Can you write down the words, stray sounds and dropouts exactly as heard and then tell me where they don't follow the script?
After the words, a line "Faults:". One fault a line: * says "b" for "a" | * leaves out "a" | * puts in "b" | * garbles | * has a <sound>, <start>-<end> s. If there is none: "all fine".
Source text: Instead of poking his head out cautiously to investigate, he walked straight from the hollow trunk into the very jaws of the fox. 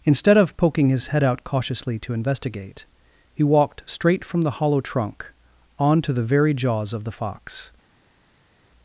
Instead of poking his head out cautiously to investigate, he walked straight from the hollow trunk onto the very jaws of the fox.
Faults:
* says "onto" for "into"